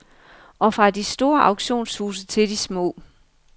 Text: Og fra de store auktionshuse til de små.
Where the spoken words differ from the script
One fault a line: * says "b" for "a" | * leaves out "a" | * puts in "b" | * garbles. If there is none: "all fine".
all fine